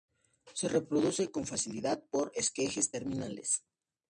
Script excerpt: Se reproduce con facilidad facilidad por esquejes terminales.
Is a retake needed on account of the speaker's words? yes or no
yes